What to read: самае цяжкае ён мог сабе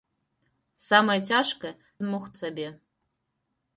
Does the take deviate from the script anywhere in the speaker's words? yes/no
no